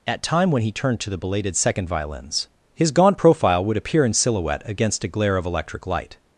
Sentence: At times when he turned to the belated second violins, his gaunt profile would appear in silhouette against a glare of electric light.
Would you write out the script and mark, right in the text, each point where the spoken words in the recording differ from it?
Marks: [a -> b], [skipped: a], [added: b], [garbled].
At [times -> time] when he turned to the belated second violins, his gaunt profile would appear in silhouette against a glare of electric light.